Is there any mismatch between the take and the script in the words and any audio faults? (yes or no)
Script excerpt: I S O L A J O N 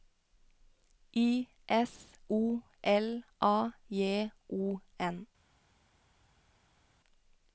no